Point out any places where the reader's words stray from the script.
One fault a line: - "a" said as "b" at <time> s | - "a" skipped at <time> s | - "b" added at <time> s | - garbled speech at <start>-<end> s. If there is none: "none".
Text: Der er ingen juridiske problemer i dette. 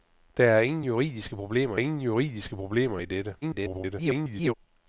- "ingen juridiske problemer" added at 1.7 s
- garbled speech at 3.4-4.5 s